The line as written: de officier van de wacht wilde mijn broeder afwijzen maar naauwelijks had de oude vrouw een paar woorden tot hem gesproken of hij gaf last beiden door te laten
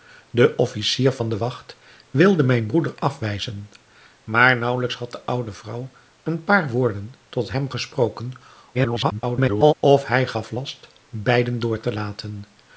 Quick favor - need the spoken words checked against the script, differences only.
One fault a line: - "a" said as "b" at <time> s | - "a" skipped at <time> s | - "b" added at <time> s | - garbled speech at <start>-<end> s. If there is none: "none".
- garbled speech at 8.7-9.7 s